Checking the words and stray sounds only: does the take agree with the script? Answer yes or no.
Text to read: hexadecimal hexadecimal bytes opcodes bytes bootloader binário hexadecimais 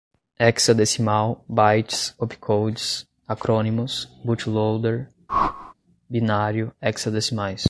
no